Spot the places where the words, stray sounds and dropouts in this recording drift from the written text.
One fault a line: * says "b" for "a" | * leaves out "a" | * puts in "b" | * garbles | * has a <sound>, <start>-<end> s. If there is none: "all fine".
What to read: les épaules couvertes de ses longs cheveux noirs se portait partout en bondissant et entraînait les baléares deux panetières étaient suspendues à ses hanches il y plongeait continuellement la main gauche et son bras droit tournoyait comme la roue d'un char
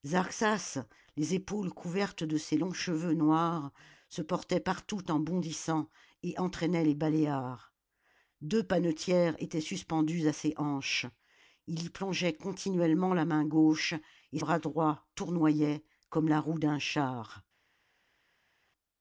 * leaves out "son"